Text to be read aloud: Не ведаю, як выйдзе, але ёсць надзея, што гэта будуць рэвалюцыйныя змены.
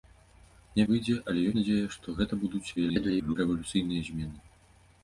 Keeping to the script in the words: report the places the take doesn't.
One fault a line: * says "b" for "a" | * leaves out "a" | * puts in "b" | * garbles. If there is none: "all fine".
* leaves out "ведаю як"
* leaves out "ёсць"
* garbles